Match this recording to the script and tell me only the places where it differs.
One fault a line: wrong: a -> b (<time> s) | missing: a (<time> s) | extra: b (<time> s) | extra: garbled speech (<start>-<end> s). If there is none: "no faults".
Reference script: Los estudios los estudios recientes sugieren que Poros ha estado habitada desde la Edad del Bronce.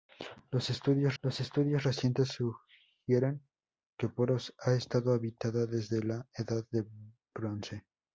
no faults